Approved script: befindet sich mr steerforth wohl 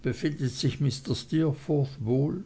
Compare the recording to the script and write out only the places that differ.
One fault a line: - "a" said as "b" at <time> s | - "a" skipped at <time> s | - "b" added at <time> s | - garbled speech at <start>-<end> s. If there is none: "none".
none